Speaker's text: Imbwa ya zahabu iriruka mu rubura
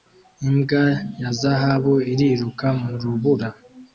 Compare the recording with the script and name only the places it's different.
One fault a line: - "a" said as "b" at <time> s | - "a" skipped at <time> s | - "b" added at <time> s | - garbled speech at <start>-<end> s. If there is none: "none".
none